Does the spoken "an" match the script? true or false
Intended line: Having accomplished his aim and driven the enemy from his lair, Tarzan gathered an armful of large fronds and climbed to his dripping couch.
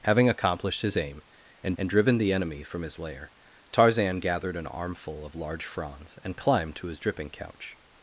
true